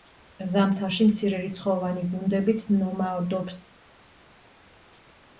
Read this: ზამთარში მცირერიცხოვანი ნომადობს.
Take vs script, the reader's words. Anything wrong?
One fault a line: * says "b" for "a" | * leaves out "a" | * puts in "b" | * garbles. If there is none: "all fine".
* puts in "გუნდებით"